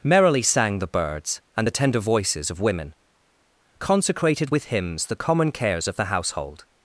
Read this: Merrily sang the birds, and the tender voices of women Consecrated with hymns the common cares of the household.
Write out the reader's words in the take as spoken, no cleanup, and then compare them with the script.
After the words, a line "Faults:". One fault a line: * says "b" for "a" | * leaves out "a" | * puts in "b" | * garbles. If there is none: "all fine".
Merrily sang the birds, and the tender voices of women Consecrated with hymns the common cares of the household.
Faults:
all fine